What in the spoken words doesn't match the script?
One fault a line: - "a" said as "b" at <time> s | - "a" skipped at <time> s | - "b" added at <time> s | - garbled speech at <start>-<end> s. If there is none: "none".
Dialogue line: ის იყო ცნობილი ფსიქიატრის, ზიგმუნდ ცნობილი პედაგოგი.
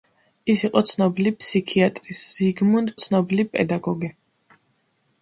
none